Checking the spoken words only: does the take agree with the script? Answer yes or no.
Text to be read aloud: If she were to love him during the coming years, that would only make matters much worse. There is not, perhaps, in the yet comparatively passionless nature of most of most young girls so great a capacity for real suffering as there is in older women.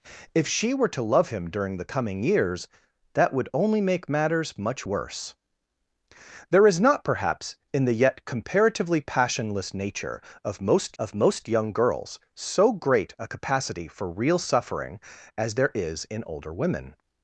yes